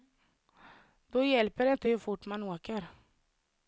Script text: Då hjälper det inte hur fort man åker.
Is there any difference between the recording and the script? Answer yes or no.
no